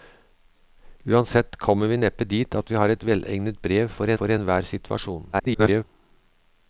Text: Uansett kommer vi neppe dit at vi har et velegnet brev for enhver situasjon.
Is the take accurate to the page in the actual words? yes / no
no